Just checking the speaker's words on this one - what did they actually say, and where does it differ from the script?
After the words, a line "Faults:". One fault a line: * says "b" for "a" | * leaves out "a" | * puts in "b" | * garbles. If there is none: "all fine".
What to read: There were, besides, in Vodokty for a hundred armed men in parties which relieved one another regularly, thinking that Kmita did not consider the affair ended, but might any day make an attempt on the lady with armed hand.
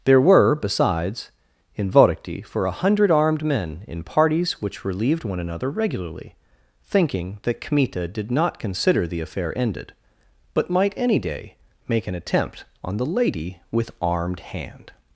There were, besides, in Vodokty for a hundred armed men in parties which relieved one another regularly, thinking that Kmita did not consider the affair ended, but might any day make an attempt on the lady with armed hand.
Faults:
all fine